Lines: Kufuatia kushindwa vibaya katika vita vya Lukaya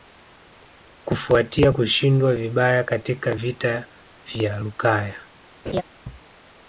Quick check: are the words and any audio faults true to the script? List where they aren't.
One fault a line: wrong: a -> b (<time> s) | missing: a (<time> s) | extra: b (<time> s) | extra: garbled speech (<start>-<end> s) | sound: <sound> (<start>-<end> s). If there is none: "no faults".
sound: laugh (5.7-5.8 s)